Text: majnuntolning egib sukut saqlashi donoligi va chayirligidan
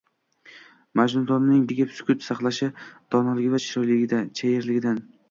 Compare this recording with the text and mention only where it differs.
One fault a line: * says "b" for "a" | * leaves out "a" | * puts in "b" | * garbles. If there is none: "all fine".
all fine